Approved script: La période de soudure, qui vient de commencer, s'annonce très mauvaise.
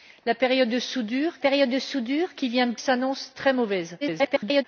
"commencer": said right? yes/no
no